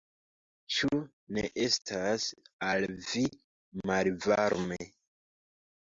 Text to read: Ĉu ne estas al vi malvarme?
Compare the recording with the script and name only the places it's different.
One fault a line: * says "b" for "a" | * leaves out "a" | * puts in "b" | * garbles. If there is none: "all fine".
all fine